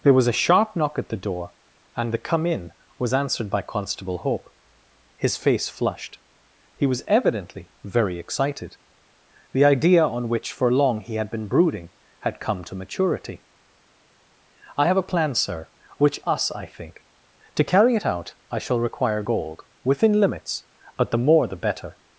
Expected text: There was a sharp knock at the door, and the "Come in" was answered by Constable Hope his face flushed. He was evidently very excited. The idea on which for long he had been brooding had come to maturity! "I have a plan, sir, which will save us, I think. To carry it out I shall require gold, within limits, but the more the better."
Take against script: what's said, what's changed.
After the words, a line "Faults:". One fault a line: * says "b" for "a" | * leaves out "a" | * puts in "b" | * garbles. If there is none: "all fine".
There was a sharp knock at the door, and the "Come in" was answered by Constable Hope his face flushed. He was evidently very excited. The idea on which for long he had been brooding had come to maturity! "I have a plan, sir, which us, I think. To carry it out I shall require gold, within limits, but the more the better."
Faults:
* leaves out "will save"